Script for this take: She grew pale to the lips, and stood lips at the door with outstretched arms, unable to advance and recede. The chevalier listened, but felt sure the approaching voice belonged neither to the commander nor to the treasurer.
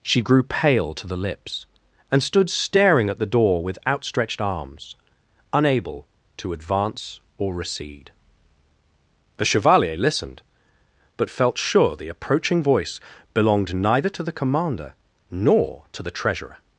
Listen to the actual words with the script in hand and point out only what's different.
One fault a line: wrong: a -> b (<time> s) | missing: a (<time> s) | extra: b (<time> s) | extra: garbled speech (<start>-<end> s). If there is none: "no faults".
wrong: lips -> staring (2.5 s)
wrong: and -> or (7.4 s)